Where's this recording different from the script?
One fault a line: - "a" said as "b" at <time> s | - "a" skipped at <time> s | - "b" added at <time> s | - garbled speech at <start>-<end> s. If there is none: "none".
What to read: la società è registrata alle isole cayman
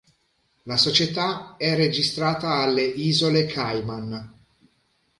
none